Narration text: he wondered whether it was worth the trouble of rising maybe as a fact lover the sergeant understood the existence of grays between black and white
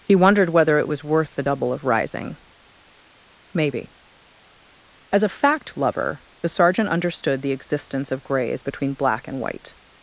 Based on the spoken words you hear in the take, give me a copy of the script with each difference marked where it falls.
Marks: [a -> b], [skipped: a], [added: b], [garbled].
he wondered whether it was worth the [trouble -> double] of rising maybe as a fact lover the sergeant understood the existence of grays between black and white